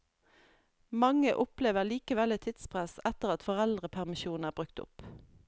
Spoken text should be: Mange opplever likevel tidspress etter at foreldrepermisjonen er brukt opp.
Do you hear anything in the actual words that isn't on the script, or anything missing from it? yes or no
yes